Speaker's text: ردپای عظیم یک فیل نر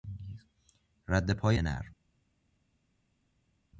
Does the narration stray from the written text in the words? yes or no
yes